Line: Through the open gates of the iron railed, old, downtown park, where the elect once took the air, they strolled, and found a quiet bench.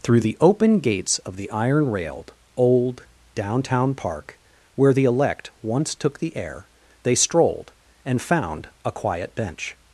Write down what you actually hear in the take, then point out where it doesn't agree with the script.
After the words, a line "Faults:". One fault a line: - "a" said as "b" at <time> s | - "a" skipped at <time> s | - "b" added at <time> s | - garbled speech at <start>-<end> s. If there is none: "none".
Through the open gates of the iron railed, old, downtown park, where the elect once took the air, they strolled, and found a quiet bench.
Faults:
none